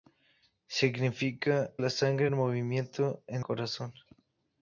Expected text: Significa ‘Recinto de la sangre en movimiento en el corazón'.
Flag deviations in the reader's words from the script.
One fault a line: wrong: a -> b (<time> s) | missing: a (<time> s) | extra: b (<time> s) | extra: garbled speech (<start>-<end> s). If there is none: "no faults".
missing: Recinto de (1.7 s)
missing: el (3.5 s)